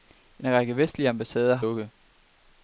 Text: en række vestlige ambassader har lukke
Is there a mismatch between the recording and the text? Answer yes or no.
no